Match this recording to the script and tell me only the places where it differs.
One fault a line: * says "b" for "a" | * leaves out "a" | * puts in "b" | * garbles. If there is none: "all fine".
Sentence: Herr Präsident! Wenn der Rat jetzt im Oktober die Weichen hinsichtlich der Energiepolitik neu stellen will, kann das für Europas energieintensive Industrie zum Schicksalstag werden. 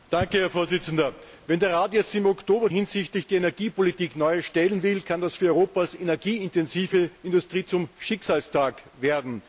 * leaves out "die Weichen"